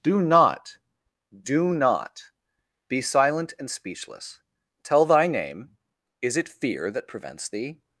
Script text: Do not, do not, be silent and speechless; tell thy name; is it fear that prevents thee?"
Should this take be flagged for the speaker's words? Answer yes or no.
no